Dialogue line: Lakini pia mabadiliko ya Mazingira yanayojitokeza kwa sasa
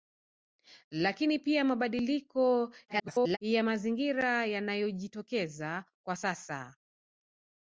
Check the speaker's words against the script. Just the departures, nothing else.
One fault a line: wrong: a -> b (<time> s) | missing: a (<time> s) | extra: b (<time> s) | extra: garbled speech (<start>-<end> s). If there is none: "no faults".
extra: garbled speech (2.9-3.4 s)